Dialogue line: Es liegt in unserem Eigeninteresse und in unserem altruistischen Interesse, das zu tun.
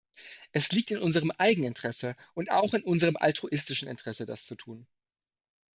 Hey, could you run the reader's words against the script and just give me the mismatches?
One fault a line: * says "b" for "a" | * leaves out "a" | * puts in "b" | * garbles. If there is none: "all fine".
* puts in "auch"